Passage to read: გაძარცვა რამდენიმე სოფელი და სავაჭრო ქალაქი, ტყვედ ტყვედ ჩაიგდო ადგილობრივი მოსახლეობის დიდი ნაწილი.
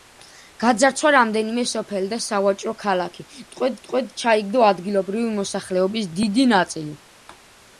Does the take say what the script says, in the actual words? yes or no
yes